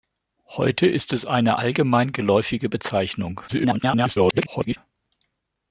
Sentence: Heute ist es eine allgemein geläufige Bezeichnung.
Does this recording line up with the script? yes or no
no